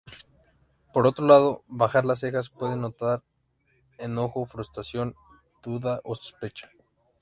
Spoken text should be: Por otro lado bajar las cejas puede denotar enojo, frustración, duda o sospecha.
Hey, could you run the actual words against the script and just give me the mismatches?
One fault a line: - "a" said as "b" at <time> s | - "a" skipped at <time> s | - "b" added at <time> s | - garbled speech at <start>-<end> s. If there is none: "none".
none